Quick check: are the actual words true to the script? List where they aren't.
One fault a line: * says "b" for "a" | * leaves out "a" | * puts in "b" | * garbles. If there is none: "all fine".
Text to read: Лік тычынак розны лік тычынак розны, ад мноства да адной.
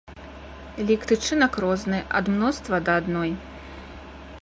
* leaves out "лік тычынак розны"